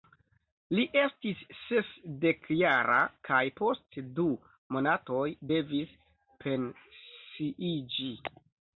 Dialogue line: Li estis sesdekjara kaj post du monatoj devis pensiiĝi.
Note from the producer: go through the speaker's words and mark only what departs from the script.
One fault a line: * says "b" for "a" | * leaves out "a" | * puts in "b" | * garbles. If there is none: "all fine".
all fine